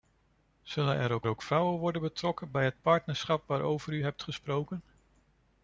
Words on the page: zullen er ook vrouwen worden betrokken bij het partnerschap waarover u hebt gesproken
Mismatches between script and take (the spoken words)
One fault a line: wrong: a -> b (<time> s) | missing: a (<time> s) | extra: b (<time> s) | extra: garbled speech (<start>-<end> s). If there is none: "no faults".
extra: ook (1.3 s)